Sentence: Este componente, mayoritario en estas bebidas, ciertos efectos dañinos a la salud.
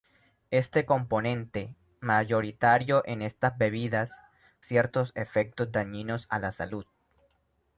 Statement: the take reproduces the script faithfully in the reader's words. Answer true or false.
true